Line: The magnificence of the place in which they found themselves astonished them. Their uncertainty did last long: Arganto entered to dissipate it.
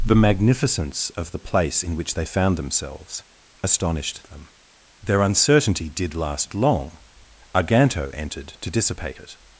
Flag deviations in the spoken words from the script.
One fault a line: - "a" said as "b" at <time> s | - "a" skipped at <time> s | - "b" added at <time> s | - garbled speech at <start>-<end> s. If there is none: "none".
none